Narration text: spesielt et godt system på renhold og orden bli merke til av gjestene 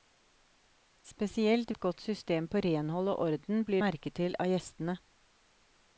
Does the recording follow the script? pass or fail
pass